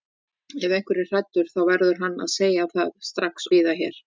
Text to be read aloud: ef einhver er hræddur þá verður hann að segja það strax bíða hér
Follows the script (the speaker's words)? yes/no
yes